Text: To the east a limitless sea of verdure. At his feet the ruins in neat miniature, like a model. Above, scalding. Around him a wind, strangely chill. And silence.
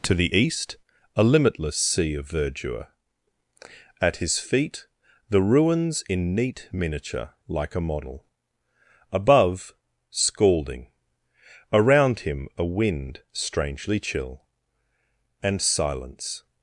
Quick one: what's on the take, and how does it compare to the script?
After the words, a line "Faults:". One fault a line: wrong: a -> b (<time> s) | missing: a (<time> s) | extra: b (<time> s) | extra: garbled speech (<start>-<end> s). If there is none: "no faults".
To the east a limitless sea of verdure. At his feet the ruins in neat miniature, like a model. Above, scalding. Around him a wind, strangely chill. And silence.
Faults:
no faults